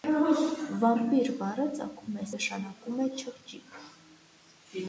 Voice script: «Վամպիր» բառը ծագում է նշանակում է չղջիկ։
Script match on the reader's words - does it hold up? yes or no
yes